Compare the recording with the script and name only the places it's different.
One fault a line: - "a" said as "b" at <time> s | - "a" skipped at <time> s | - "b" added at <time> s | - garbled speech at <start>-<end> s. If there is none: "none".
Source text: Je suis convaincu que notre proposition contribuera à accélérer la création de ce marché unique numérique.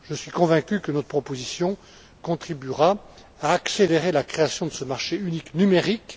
none